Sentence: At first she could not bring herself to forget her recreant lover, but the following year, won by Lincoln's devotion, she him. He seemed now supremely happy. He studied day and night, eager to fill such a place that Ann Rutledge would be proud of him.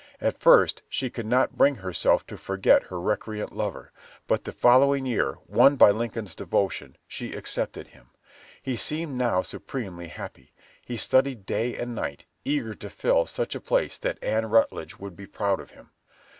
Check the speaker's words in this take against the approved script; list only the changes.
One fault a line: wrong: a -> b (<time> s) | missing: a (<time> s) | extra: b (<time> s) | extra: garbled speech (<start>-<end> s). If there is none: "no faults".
extra: accepted (7.3 s)